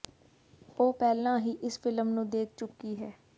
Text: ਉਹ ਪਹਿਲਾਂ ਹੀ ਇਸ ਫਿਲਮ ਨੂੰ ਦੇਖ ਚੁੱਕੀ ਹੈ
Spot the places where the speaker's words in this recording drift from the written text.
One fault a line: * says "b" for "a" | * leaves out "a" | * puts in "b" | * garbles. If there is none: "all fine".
all fine